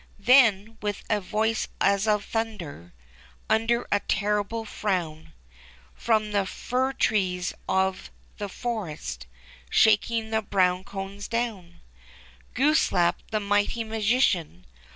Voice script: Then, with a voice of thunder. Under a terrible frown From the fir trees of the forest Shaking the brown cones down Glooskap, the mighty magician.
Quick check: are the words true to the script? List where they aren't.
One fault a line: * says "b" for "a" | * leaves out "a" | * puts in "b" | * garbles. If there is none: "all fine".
* puts in "as"